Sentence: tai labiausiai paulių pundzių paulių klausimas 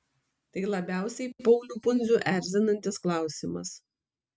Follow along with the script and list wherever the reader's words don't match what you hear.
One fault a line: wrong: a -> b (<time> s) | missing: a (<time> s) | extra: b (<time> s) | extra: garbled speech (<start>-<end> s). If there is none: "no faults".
wrong: paulių -> erzinantis (2.4 s)